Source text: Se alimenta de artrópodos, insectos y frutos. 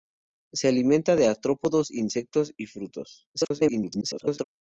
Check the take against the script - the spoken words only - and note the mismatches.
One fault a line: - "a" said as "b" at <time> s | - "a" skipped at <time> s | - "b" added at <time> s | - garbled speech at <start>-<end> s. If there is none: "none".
- garbled speech at 3.3-4.4 s